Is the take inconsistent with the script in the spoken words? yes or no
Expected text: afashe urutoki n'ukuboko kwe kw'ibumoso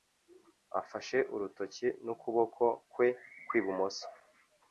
no